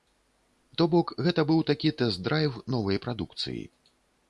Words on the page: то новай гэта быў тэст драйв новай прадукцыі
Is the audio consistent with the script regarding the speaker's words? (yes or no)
no